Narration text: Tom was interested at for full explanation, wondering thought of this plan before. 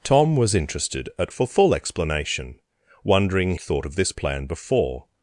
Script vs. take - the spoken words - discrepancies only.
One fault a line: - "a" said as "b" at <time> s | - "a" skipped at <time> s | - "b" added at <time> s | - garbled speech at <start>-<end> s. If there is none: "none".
none